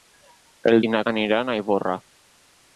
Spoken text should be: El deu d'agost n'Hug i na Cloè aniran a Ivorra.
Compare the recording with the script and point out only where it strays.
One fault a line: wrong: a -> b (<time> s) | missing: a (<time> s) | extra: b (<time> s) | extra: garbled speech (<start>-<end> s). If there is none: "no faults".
missing: deu d'agost n'Hug (0.8 s)
missing: Cloè (1.0 s)